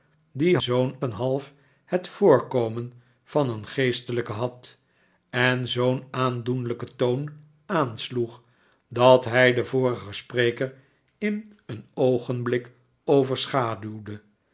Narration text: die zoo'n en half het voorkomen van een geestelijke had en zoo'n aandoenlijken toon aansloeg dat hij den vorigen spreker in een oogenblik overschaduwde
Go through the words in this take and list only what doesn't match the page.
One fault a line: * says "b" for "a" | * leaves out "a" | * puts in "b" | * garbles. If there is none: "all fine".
all fine